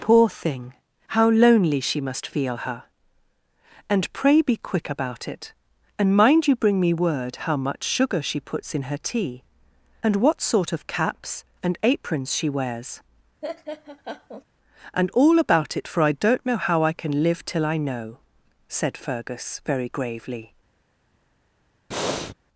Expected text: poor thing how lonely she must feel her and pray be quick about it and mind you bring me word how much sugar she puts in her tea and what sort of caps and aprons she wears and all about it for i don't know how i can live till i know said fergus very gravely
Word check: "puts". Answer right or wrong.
right